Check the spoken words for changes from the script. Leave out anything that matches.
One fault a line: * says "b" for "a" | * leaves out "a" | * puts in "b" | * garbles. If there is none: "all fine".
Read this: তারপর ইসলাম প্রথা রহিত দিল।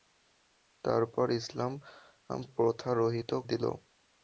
all fine